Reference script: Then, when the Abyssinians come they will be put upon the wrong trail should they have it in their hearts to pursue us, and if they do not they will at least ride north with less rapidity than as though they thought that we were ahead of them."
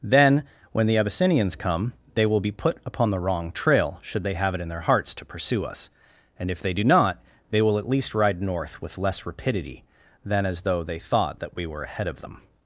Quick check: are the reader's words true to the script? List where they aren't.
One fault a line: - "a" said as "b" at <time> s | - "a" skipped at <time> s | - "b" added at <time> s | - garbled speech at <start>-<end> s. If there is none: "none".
none